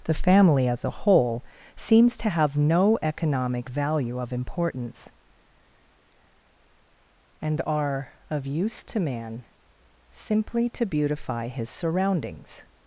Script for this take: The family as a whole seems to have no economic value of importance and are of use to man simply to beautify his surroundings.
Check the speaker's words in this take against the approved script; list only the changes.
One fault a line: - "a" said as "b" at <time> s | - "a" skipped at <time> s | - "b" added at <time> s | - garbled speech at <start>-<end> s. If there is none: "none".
none